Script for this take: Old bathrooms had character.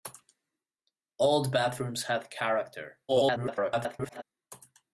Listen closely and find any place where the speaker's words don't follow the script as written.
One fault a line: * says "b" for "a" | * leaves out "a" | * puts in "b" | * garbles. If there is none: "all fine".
* garbles